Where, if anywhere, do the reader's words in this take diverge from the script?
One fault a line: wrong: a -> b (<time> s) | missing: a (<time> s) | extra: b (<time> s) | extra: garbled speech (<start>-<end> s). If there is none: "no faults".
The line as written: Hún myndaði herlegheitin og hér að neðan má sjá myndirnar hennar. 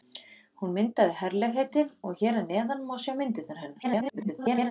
extra: garbled speech (3.8-4.7 s)